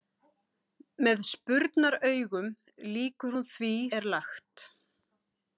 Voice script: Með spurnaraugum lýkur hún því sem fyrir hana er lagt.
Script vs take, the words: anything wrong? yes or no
yes